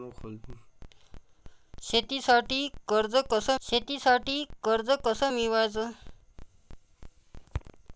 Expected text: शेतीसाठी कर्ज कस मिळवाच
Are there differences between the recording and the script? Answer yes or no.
yes